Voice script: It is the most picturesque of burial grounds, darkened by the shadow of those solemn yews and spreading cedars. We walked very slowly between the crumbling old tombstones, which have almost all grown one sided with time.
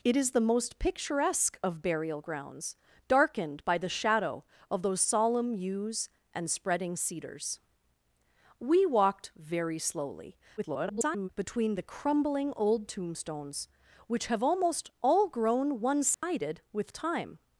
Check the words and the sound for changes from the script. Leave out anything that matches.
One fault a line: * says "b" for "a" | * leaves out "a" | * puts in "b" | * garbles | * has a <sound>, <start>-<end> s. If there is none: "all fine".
* garbles
* has a dropout, 16.1-16.2 s